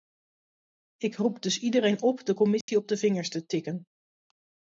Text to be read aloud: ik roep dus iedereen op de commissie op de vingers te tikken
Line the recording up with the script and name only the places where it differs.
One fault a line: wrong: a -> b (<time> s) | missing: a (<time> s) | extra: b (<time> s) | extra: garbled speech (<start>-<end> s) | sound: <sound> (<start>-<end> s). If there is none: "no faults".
sound: dropout (2.6-2.7 s)